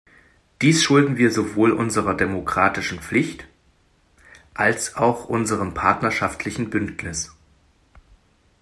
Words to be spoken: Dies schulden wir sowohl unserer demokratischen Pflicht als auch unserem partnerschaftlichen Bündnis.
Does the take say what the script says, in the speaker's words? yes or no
yes